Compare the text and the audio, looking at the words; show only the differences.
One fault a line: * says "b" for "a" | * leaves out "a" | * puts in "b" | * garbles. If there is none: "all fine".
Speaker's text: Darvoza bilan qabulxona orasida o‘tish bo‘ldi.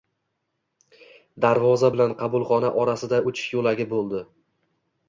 * puts in "yo‘lagi"